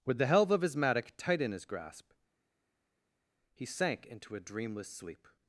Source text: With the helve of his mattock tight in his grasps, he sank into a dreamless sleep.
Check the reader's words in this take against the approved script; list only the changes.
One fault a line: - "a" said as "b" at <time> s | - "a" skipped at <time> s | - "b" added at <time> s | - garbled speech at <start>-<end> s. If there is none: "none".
- "grasps" said as "grasp" at 1.6 s